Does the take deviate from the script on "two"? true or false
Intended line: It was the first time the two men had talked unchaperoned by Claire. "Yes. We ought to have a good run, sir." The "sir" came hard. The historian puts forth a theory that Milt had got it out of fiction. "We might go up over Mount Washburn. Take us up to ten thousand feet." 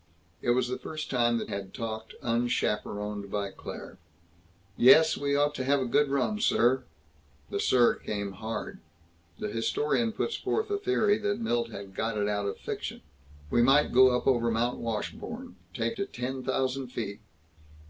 true